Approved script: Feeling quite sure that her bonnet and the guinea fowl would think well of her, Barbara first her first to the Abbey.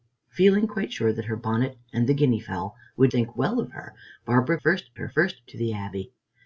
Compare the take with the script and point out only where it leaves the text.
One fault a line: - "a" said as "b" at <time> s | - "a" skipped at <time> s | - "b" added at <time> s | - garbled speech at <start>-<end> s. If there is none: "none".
none